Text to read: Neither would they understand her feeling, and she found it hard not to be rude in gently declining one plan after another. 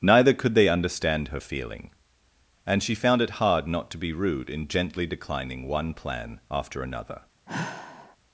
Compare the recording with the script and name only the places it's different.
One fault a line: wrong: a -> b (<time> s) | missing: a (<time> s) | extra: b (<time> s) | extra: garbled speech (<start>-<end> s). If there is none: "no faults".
wrong: would -> could (0.3 s)